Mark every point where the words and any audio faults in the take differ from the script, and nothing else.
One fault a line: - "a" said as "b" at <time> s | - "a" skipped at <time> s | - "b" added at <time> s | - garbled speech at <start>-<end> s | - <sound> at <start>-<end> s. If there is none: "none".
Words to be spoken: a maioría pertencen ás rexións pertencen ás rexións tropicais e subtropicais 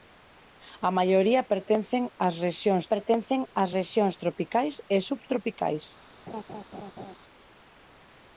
- laugh at 6.3-7.2 s